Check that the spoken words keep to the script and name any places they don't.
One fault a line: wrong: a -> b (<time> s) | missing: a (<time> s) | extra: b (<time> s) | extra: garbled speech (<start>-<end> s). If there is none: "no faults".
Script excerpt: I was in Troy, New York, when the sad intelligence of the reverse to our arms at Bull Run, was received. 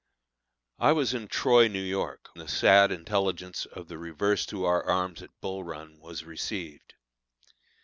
missing: when (2.3 s)